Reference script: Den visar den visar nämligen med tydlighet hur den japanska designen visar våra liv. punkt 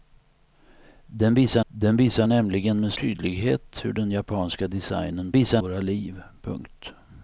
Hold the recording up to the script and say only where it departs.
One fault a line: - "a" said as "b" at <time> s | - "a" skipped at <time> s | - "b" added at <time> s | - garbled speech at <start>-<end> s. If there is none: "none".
none